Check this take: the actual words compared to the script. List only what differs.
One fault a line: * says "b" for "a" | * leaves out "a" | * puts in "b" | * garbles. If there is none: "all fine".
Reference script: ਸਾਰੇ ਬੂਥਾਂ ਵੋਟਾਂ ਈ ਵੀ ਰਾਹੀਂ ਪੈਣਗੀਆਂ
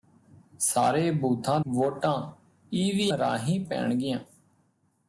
all fine